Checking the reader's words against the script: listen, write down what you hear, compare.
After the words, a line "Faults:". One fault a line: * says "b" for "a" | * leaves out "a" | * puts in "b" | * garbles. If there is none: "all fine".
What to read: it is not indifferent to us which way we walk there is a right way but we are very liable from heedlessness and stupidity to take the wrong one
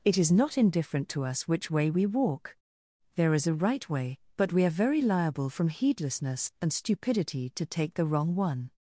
it is not indifferent to us which way we walk there is a right way but we are very liable from heedlessness and stupidity to take the wrong one
Faults:
all fine